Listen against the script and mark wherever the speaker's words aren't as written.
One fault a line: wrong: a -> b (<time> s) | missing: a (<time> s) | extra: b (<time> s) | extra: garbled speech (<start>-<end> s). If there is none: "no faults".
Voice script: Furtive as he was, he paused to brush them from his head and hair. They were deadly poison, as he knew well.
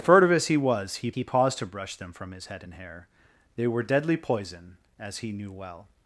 extra: he (1.1 s)